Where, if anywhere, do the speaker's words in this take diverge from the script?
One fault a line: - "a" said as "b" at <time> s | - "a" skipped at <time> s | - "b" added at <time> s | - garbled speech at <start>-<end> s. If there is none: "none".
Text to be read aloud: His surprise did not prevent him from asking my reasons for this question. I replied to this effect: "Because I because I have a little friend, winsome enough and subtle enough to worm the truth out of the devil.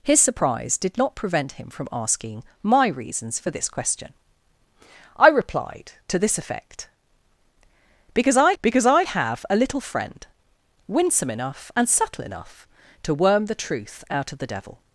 none